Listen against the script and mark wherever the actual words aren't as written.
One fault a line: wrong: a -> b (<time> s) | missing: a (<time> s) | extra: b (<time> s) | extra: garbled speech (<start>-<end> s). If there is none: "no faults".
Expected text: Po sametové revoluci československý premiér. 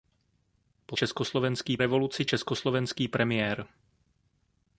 wrong: sametové -> československý (0.9 s)